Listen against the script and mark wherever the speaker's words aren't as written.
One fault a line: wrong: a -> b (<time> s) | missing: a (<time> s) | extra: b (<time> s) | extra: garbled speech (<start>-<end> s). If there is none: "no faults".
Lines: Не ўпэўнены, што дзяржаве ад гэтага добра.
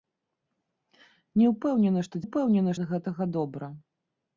wrong: дзяржаве -> ўпэўнены (2.2 s)